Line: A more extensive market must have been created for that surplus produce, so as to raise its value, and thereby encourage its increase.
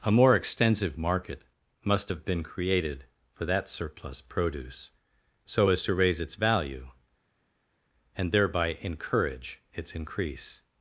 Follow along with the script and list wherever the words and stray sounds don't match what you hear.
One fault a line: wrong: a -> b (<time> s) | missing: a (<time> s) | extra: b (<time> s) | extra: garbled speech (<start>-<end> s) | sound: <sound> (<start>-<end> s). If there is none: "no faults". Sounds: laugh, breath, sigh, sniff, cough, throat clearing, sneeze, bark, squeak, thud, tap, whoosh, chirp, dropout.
no faults